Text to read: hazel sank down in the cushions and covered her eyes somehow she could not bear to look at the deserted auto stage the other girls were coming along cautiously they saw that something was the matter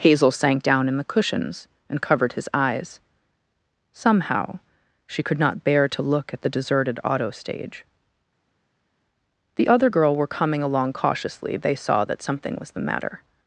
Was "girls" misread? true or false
true